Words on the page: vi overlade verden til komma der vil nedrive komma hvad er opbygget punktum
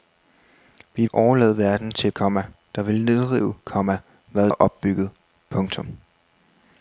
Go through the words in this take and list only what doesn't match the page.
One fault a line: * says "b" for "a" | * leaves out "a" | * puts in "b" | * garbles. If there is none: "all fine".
all fine